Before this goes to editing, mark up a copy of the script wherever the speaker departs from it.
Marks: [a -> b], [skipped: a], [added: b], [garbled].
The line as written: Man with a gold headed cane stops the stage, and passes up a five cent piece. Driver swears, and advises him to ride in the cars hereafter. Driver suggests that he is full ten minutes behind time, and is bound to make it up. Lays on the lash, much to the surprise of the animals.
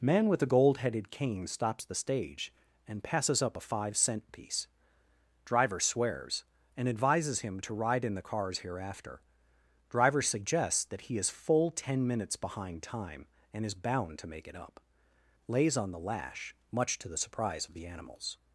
Man with [a -> the] gold headed cane stops the stage, and passes up a five cent piece. Driver swears, and advises him to ride in the cars hereafter. Driver suggests that he is full ten minutes behind time, and is bound to make it up. Lays on the lash, much to the surprise of the animals.